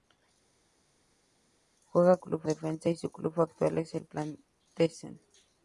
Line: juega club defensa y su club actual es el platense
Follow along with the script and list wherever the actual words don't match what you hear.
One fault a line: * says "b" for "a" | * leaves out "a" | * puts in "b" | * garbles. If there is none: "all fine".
all fine